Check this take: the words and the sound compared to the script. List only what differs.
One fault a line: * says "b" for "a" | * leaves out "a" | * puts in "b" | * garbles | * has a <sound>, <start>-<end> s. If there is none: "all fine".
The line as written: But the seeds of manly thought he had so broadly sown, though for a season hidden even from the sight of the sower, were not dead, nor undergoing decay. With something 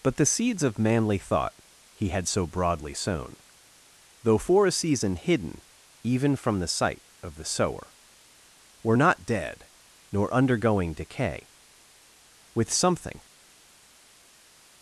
all fine